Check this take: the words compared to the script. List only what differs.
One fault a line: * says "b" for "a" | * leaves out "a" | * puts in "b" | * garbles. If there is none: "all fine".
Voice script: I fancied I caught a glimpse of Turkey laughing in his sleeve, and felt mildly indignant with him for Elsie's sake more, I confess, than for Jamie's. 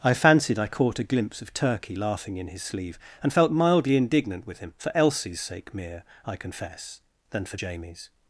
* says "mere" for "more"